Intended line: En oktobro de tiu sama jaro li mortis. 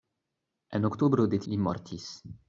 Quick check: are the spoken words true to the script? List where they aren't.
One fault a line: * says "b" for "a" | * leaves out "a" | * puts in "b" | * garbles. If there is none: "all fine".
* leaves out "tiu sama jaro"